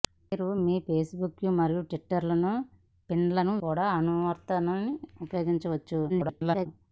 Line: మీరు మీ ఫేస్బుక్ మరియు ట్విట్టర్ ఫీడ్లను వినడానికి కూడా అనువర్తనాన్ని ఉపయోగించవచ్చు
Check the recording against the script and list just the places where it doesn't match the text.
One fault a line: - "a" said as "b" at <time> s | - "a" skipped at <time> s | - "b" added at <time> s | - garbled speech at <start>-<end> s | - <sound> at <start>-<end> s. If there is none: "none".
- "వినడానికి" skipped at 3.5 s
- garbled speech at 6.1-6.7 s